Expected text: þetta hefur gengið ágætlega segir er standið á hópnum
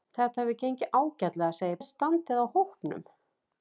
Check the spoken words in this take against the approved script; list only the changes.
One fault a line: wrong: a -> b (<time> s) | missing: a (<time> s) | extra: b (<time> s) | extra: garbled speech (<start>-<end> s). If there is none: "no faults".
no faults